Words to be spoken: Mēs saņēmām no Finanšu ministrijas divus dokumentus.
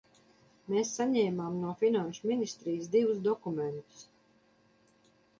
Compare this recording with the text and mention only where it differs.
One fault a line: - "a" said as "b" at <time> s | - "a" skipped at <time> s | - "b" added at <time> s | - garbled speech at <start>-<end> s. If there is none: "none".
none